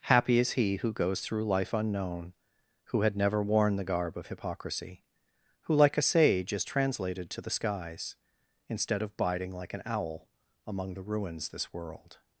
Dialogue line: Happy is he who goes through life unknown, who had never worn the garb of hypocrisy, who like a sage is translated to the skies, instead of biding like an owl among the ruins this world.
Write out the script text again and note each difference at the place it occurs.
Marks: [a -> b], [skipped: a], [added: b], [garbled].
Happy is he who goes through life unknown, who had never worn the garb of hypocrisy, who like a sage is translated to the skies, instead of biding like an owl among the ruins this world.